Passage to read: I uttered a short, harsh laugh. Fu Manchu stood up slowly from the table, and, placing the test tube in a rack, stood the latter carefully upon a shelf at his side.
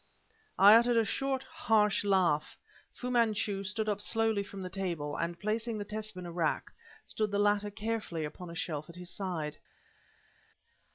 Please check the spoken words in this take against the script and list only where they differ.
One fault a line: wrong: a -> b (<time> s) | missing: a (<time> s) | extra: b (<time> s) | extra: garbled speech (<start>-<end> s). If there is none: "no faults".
missing: tube (6.2 s)